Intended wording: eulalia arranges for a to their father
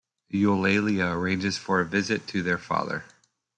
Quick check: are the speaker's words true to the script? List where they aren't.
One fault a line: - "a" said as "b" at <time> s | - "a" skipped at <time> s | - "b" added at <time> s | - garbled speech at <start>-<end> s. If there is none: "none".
- "visit" added at 1.9 s